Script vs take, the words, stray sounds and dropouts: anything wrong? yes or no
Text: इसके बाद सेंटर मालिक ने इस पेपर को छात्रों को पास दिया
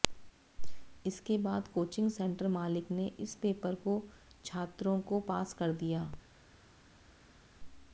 yes